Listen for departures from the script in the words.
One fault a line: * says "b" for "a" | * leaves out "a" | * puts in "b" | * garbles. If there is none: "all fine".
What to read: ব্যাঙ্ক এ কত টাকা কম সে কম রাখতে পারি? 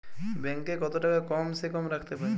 all fine